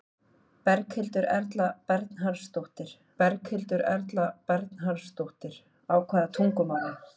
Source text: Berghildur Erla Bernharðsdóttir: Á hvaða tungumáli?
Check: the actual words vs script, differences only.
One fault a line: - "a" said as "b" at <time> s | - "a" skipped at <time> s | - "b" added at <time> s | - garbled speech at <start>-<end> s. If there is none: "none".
- "berghildur Erla Bernharðsdóttir" added at 3.2 s